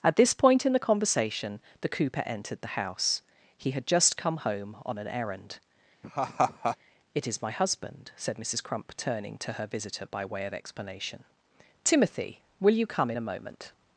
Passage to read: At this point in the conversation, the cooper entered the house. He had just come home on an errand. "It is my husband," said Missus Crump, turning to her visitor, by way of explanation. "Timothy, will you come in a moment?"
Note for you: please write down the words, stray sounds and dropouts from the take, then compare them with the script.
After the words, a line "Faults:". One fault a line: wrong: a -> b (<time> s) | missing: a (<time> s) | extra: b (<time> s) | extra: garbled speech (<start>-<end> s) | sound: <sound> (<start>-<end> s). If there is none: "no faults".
At this point in the conversation, the cooper entered the house. He had just come home on an errand. "It is my husband," said Missus Crump, turning to her visitor, by way of explanation. "Timothy, will you come in a moment?"
Faults:
sound: laugh (6.0-6.8 s)